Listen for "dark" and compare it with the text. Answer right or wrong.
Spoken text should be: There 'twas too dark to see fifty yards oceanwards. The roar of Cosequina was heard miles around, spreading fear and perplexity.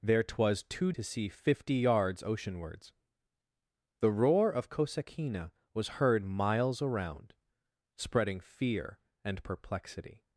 wrong